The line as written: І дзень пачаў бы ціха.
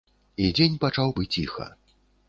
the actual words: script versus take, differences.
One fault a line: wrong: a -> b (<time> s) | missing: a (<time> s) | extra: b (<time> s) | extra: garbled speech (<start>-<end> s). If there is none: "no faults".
no faults